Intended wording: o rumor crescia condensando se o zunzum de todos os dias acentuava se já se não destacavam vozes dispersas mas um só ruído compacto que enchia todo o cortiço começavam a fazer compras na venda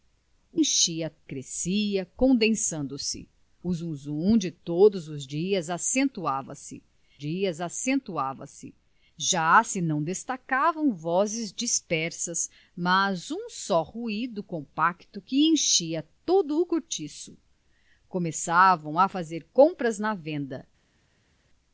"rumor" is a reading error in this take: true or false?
true